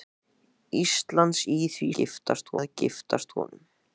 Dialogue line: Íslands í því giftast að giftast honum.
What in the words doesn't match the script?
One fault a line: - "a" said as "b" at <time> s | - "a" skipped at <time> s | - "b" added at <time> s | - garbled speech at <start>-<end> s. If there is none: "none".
none